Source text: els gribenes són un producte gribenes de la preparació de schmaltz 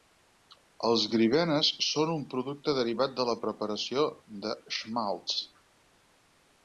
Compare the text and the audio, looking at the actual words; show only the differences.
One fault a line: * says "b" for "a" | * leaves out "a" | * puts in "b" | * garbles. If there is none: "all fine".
* says "derivat" for "gribenes"